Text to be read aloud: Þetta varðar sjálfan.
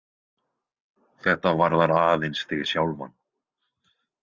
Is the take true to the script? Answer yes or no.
no